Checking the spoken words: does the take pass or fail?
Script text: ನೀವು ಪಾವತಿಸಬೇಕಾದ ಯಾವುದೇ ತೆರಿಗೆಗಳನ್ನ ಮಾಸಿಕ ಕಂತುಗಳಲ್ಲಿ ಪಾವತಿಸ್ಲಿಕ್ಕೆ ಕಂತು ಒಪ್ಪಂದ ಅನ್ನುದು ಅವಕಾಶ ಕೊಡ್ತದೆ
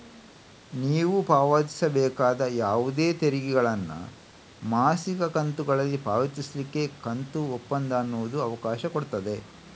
pass